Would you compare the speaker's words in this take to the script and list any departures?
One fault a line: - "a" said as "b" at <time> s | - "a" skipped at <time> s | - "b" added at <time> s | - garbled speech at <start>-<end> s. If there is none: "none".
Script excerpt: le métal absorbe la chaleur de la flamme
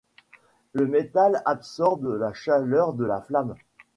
none